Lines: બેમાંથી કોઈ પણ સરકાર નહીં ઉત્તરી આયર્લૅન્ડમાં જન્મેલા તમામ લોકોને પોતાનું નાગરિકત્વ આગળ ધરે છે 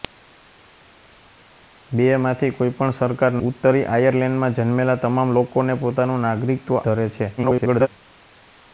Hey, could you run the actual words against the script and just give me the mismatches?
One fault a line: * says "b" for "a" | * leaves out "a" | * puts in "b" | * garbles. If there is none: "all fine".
* leaves out "નહીં"
* leaves out "આગળ"
* garbles